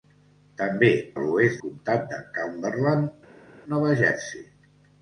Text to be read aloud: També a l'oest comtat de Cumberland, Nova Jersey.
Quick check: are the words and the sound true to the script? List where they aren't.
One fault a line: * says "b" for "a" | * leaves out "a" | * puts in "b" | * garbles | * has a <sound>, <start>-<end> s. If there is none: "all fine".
all fine